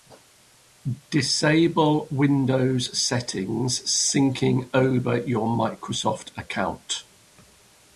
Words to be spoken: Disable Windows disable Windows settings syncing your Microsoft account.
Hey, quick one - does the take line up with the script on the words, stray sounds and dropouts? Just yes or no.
no